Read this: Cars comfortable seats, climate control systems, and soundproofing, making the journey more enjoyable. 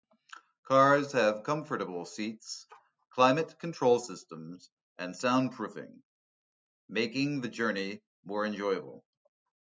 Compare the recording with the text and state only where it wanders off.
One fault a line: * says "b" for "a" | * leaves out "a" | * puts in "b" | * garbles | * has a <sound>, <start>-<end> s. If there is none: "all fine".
* puts in "have"